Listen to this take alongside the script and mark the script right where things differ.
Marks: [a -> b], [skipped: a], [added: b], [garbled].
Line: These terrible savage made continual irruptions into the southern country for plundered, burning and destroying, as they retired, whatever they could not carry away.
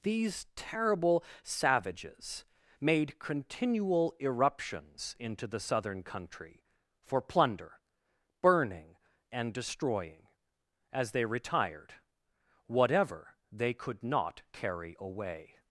These terrible [savage -> savages] made continual irruptions into the southern country for [plundered, -> plunder] burning and destroying, as they retired, whatever they could not carry away.